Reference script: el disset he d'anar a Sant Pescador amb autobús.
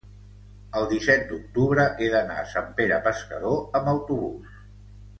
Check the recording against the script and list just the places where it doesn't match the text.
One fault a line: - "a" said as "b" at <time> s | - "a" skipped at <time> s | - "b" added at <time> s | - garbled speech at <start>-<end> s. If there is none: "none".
- "d'octubre" added at 1.3 s
- "Pere" added at 2.8 s